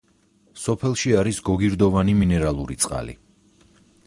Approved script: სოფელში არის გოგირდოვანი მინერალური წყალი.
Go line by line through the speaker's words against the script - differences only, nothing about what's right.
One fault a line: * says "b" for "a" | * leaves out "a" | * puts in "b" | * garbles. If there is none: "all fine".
all fine